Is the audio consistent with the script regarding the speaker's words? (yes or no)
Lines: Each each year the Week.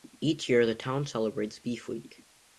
no